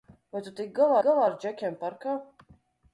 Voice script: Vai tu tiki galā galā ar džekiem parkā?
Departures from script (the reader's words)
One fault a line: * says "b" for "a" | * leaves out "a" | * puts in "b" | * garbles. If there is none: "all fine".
all fine